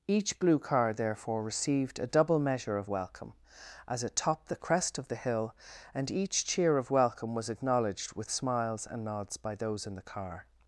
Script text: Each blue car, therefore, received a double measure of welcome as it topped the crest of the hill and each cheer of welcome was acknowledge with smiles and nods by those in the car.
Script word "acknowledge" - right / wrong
wrong